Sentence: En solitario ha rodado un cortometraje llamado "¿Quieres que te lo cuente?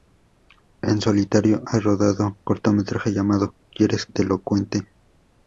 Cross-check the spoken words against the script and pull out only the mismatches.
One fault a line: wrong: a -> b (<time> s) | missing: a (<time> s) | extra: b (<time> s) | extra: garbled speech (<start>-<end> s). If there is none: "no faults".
missing: un (2.4 s)
missing: que (4.1 s)